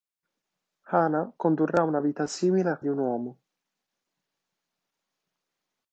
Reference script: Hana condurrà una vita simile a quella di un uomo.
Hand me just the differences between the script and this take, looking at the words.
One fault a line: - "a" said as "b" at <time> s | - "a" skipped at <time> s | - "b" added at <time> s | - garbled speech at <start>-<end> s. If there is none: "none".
- "quella" skipped at 2.8 s